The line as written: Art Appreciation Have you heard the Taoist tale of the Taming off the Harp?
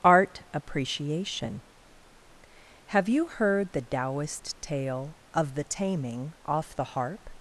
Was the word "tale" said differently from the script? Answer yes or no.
no